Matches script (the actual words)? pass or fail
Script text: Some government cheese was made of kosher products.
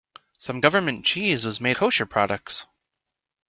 fail